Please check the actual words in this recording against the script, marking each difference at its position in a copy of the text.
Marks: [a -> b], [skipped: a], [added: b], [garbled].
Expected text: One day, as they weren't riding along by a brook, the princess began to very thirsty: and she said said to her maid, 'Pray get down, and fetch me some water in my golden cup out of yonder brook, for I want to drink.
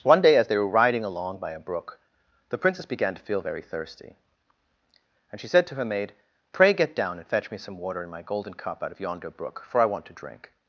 One day, as they [weren't -> were] riding along by a brook, the princess began to [added: feel] very thirsty: and she said [skipped: said] to her maid, 'Pray get down, and fetch me some water in my golden cup out of yonder brook, for I want to drink.